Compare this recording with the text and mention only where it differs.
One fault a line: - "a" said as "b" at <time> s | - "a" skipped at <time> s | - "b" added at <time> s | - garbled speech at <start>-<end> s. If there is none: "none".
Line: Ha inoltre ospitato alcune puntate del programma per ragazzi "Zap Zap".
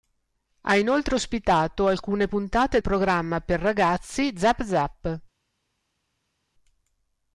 - "del" skipped at 2.8 s